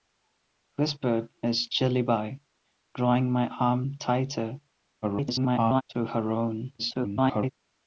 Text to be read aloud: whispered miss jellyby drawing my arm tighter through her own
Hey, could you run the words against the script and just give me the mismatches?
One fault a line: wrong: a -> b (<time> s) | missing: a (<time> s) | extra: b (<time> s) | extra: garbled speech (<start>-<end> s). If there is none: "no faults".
extra: garbled speech (5.0-5.8 s)
extra: garbled speech (6.8-7.5 s)